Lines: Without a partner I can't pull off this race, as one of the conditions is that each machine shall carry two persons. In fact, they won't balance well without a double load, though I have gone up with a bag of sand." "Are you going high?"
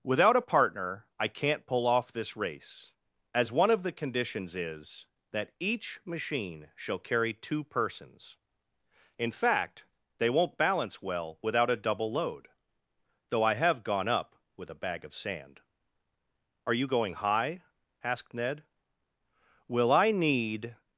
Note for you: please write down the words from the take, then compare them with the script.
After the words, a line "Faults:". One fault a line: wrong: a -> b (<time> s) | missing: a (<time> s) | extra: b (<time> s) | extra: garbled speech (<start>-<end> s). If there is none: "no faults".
Without a partner I can't pull off this race, as one of the conditions is that each machine shall carry two persons. In fact, they won't balance well without a double load, though I have gone up with a bag of sand." "Are you going high?" asked Ned. "Will I need
Faults:
extra: asked Ned Will I need (18.0 s)